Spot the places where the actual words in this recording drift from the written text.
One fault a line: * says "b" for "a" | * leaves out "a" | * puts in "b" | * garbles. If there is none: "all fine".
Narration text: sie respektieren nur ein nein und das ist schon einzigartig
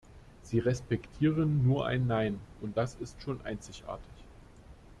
all fine